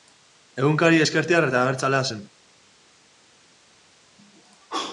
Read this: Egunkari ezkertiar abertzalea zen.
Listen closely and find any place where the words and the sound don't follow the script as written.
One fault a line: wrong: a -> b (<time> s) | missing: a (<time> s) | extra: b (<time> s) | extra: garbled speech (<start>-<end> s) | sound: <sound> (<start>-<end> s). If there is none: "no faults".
extra: eta (1.5 s)